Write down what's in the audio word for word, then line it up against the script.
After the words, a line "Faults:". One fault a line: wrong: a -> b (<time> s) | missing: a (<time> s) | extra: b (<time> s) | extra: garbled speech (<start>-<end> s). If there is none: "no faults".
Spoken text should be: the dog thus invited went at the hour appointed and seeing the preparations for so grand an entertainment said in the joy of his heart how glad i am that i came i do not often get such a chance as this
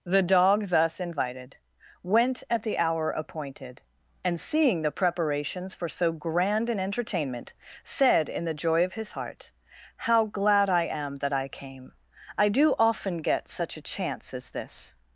the dog thus invited went at the hour appointed and seeing the preparations for so grand an entertainment said in the joy of his heart how glad i am that i came i do often get such a chance as this
Faults:
missing: not (12.7 s)